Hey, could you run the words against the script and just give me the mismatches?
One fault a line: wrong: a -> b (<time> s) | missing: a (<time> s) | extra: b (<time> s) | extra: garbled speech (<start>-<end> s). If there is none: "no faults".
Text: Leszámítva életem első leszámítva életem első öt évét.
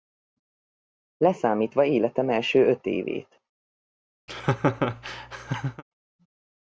missing: leszámítva életem első (2.7 s)